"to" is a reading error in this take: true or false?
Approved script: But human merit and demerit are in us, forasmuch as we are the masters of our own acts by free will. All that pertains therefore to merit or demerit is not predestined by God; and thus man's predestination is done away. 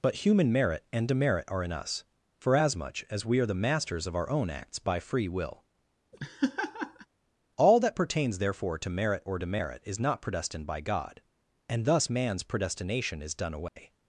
false